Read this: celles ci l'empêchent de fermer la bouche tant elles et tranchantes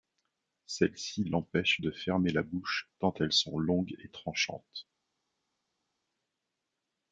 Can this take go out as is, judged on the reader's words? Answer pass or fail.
fail